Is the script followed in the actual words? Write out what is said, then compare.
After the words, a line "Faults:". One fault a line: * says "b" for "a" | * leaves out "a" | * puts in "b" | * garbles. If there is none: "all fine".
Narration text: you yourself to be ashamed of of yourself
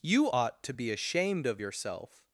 you ought to be ashamed of yourself
Faults:
* says "ought" for "yourself"
* leaves out "of"